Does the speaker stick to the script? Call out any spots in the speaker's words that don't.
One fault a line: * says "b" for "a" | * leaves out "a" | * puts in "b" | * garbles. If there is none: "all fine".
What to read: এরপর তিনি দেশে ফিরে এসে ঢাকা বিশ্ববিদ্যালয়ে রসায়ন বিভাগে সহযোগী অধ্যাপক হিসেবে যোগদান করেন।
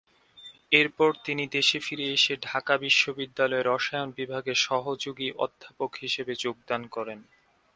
all fine